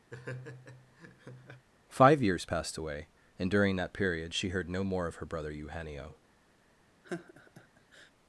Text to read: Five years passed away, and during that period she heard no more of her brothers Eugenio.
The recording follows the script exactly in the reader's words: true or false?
false